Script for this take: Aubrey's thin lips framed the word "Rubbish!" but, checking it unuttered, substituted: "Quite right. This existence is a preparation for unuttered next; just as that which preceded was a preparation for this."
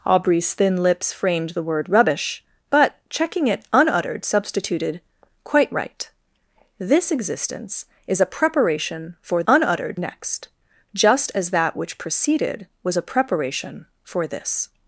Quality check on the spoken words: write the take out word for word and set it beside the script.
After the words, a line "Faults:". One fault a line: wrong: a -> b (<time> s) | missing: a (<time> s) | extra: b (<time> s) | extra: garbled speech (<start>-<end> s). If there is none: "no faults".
Aubrey's thin lips framed the word "Rubbish!" but, checking it unuttered, substituted: "Quite right. This existence is a preparation for unuttered next; just as that which preceded was a preparation for this."
Faults:
no faults